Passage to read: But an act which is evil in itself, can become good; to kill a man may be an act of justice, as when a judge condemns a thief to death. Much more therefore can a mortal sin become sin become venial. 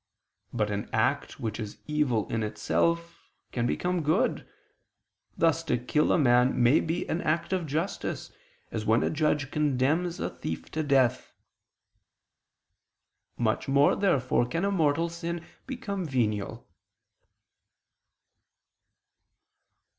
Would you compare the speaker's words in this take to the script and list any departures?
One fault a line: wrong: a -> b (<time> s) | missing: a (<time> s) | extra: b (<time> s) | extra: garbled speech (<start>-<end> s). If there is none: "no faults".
extra: thus (5.4 s)
missing: sin become (16.0 s)